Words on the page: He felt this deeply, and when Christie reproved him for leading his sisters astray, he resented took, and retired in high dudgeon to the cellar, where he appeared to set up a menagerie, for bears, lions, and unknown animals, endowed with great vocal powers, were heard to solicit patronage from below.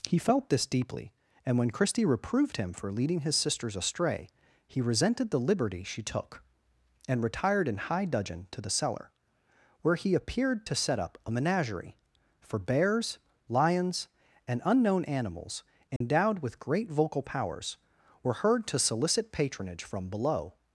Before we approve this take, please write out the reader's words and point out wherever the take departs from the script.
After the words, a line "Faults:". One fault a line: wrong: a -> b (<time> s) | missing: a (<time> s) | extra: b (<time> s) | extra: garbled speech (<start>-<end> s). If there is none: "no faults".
He felt this deeply, and when Christie reproved him for leading his sisters astray, he resented the liberty she took, and retired in high dudgeon to the cellar, where he appeared to set up a menagerie, for bears, lions, and unknown animals, endowed with great vocal powers, were heard to solicit patronage from below.
Faults:
extra: the liberty she (5.3 s)